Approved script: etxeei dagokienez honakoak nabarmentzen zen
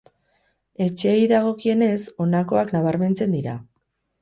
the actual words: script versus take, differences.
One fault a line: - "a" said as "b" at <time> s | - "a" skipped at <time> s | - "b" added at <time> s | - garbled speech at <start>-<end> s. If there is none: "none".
- "zen" said as "dira" at 3.4 s